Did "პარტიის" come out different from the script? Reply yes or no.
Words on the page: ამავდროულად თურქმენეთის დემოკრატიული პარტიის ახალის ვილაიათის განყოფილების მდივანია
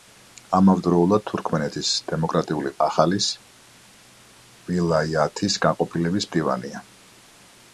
yes